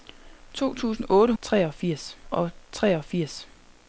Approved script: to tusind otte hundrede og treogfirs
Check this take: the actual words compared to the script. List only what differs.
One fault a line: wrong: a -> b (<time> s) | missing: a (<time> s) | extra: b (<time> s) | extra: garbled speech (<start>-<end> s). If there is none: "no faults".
wrong: hundrede -> treogfirs (1.4 s)